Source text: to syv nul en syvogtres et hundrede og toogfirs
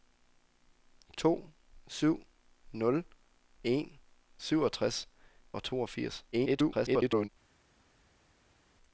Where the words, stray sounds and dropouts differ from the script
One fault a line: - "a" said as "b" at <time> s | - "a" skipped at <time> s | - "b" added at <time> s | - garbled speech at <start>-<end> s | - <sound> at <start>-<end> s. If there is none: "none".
- "et hundrede" skipped at 5.1 s
- garbled speech at 6.3-7.3 s